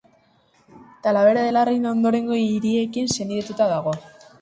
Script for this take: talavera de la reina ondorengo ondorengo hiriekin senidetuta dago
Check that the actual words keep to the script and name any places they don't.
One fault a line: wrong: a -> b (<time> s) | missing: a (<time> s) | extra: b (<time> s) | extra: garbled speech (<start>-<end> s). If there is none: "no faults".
missing: ondorengo (2.4 s)